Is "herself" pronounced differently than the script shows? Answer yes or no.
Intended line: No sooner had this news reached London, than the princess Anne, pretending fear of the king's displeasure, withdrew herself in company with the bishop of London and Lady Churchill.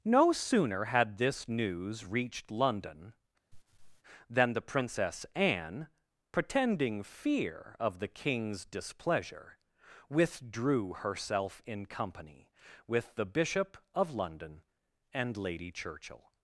no